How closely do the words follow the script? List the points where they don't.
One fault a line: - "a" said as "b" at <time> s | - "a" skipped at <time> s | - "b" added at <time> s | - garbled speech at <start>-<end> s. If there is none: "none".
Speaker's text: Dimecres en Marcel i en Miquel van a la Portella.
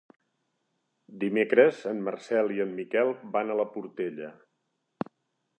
none